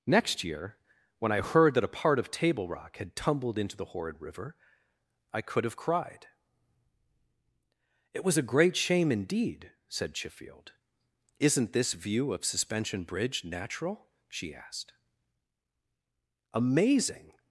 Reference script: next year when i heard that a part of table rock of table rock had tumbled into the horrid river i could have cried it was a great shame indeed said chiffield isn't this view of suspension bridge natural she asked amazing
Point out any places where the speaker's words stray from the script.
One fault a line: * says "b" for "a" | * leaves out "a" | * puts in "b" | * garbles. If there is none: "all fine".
* leaves out "of table rock"